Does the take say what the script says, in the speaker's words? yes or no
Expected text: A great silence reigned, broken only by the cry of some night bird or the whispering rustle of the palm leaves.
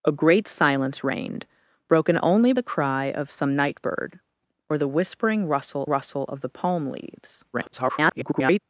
no